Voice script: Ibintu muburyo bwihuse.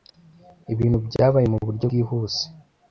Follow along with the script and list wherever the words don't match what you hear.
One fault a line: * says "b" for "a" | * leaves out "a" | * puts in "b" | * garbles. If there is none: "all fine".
* puts in "byabaye"